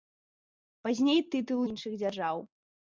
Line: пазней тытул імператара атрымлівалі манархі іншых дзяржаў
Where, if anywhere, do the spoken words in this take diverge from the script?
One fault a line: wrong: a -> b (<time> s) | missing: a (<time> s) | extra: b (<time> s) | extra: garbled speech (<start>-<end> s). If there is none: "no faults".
missing: імператара атрымлівалі манархі (1.6 s)